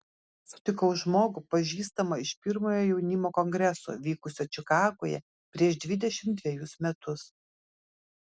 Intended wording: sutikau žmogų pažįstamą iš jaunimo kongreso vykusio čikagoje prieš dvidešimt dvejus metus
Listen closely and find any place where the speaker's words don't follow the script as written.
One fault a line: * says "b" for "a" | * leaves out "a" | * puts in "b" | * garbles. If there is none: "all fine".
* puts in "pirmojo"